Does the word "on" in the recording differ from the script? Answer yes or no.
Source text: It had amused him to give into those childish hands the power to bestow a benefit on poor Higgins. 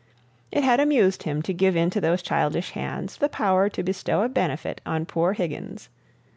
no